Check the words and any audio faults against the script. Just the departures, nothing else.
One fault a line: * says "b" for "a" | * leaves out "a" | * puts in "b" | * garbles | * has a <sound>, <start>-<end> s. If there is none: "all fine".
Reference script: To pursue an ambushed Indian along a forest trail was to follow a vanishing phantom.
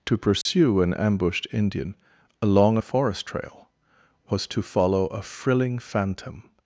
* has a dropout, 0.4-0.5 s
* says "frilling" for "vanishing"